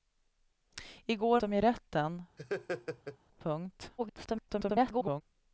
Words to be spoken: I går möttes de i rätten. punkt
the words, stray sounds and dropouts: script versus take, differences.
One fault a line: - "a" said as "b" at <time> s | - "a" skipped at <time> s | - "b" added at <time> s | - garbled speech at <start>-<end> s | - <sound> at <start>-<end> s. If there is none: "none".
- "möttes" skipped at 1.4 s
- laugh at 2.4-3.2 s
- garbled speech at 4.0-5.2 s